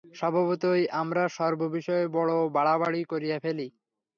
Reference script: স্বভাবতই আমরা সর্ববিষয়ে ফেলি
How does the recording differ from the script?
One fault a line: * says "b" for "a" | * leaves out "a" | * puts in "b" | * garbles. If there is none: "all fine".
* puts in "বড় বাড়াবাড়ি করিয়া"